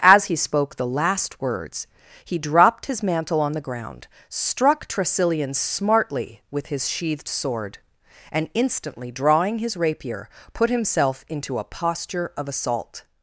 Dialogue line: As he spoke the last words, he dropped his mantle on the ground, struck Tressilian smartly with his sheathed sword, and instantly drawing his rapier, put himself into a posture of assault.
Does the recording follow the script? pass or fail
pass